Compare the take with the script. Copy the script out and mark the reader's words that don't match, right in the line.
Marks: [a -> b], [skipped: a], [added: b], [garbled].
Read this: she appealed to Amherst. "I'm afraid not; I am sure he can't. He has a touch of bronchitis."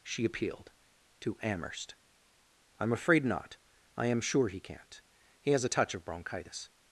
she appealed to Amherst. "I'm afraid not; I am sure he can't. He has a touch of bronchitis."